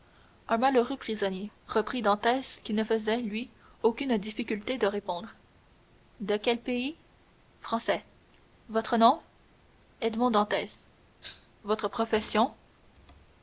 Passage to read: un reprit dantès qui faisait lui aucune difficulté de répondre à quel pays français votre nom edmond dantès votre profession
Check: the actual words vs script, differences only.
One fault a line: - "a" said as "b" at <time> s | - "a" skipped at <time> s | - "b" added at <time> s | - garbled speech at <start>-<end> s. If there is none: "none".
- "malheureux prisonnier" added at 0.6 s
- "ne" added at 2.7 s
- "à" said as "de" at 6.2 s